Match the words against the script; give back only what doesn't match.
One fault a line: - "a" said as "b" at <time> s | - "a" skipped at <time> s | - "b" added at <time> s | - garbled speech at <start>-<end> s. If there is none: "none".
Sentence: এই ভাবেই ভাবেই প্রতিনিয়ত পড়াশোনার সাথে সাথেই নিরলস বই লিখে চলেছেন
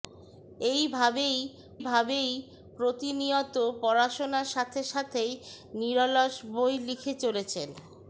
none